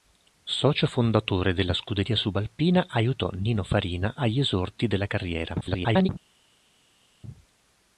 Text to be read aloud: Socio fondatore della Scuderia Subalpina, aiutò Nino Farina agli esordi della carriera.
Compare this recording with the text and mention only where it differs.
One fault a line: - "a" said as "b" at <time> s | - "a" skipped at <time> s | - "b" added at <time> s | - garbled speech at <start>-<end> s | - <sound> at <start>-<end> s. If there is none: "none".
- garbled speech at 5.6-6.1 s